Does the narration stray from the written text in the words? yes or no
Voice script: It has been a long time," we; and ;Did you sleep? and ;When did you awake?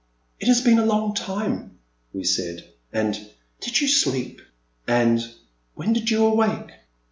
yes